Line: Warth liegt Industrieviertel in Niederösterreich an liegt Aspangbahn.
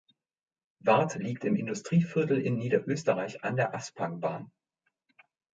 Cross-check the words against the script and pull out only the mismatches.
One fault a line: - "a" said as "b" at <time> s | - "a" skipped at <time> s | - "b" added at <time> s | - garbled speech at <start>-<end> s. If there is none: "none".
- "im" added at 1.4 s
- "liegt" said as "der" at 3.6 s